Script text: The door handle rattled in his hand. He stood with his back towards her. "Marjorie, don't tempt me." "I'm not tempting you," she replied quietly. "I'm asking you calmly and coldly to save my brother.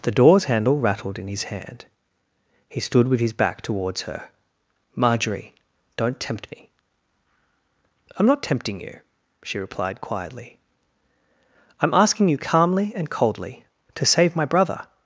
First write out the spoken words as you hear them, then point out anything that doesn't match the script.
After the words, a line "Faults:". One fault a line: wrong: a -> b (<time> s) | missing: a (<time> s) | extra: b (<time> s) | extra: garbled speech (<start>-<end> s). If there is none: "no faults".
The doors handle rattled in his hand. He stood with his back towards her. "Marjorie, don't tempt me." "I'm not tempting you," she replied quietly. "I'm asking you calmly and coldly to save my brother.
Faults:
wrong: door -> doors (0.1 s)